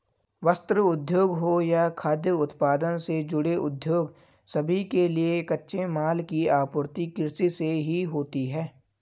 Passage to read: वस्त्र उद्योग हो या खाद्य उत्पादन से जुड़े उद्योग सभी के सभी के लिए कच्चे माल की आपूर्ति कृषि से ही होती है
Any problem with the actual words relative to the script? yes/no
yes